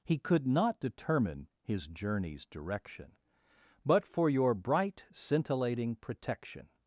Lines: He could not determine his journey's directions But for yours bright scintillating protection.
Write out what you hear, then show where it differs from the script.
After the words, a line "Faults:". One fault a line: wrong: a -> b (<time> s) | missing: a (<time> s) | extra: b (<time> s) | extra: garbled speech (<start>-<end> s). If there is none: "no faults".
He could not determine his journey's direction But for your bright scintillating protection.
Faults:
wrong: directions -> direction (2.5 s)
wrong: yours -> your (4.3 s)